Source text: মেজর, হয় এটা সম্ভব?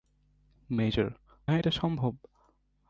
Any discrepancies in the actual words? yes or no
no